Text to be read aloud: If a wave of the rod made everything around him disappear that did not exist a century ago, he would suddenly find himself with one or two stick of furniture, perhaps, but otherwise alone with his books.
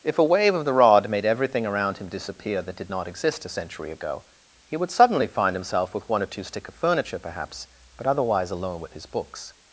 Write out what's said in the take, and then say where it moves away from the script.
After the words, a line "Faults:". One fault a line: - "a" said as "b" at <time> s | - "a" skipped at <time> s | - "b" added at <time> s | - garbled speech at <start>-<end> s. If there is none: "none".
If a wave of the rod made everything around him disappear that did not exist a century ago, he would suddenly find himself with one or two stick of furniture, perhaps, but otherwise alone with his books.
Faults:
none